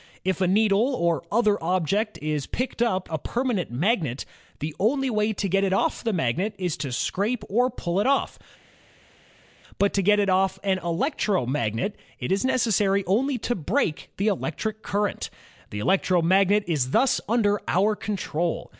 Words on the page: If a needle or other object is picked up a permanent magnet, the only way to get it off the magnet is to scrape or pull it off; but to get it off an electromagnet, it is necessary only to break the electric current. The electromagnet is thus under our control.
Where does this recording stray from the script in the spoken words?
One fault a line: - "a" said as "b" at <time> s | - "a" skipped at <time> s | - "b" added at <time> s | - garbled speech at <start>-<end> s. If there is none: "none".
none